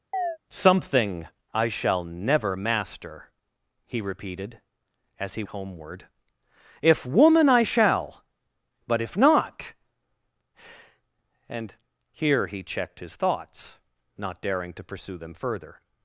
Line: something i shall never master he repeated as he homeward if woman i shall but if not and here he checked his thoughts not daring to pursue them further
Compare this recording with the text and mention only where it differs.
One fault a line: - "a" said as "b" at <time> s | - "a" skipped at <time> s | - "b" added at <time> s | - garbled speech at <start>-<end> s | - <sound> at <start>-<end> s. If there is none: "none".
- chirp at 0.1-0.4 s